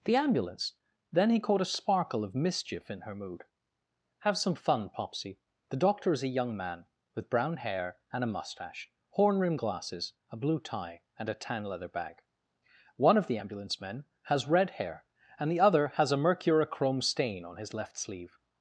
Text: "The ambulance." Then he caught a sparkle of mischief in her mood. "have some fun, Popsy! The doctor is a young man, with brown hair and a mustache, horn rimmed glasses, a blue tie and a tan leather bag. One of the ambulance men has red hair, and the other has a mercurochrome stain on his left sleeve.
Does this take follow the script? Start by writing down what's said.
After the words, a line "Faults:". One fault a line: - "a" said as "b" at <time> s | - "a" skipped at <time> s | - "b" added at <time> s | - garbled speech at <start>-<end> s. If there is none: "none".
"The ambulance." Then he caught a sparkle of mischief in her mood. "have some fun, Popsy! The doctor is a young man, with brown hair and a mustache, horn rimmed glasses, a blue tie and a tan leather bag. One of the ambulance men has red hair, and the other has a mercurochrome stain on his left sleeve.
Faults:
none